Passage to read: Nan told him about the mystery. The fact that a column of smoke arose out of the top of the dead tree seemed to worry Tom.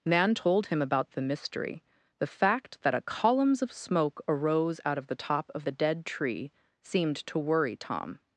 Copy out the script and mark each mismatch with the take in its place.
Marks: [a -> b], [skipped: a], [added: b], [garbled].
Nan told him about the mystery. The fact that a [column -> columns] of smoke arose out of the top of the dead tree seemed to worry Tom.